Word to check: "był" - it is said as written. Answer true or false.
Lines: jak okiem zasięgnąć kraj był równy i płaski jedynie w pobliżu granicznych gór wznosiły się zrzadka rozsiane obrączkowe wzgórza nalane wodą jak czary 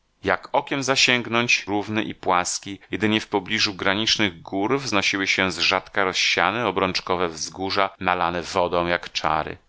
false